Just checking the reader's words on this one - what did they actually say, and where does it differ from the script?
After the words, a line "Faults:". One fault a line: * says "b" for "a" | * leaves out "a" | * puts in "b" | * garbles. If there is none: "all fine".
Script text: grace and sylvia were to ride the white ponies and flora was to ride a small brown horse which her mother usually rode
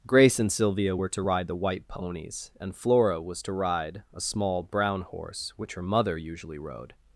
grace and sylvia were to ride the white ponies and flora was to ride a small brown horse which her mother usually rode
Faults:
all fine